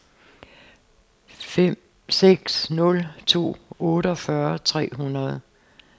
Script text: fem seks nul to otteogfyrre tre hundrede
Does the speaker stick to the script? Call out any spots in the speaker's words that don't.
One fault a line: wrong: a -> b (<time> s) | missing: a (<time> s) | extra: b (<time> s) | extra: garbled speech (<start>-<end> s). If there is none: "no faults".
no faults